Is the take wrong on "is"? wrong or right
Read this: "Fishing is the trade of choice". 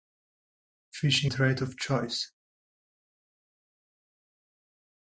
wrong